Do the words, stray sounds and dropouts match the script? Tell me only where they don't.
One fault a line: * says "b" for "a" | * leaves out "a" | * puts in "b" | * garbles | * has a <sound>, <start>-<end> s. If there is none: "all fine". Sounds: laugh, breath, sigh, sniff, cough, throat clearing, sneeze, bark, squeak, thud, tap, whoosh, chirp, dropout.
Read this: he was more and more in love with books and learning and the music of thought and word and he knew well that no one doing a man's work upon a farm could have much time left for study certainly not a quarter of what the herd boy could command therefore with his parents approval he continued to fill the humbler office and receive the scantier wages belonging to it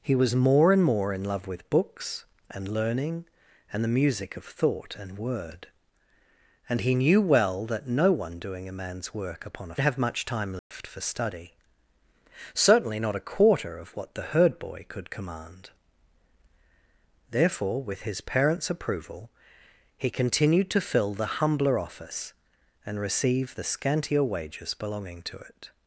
* leaves out "farm could"
* has a dropout, 10.6-10.7 s